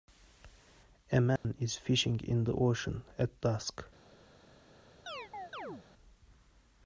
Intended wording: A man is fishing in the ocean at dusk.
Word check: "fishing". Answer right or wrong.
right